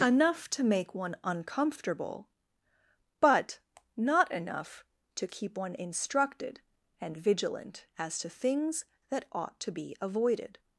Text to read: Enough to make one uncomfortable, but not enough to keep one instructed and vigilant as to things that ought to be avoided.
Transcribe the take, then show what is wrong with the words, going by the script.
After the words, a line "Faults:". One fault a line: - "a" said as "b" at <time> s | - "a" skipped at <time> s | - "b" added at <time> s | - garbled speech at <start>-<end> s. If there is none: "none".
Enough to make one uncomfortable, but not enough to keep one instructed and vigilant as to things that ought to be avoided.
Faults:
none